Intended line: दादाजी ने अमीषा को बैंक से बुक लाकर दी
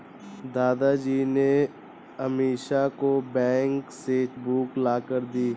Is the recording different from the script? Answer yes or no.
no